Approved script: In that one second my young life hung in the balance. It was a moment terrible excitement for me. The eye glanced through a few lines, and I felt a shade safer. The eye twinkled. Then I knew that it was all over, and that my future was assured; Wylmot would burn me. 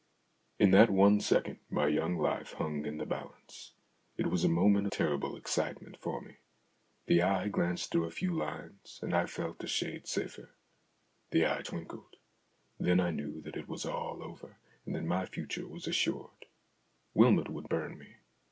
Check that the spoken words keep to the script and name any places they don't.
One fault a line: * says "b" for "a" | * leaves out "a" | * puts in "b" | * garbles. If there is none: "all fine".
all fine